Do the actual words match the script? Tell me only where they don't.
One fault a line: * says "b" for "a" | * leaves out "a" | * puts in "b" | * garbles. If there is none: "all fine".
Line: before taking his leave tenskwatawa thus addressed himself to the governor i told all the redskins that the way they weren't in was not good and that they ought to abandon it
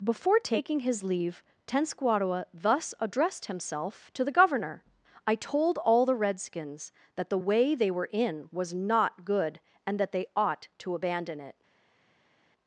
* says "were" for "weren't"